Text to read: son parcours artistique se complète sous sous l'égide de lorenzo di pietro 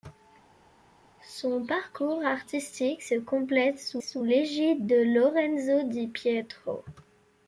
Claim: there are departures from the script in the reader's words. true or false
false